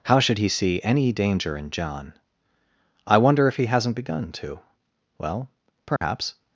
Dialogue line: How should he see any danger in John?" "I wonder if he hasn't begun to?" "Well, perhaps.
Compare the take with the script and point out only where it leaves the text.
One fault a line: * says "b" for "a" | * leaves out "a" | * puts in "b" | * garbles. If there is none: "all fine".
all fine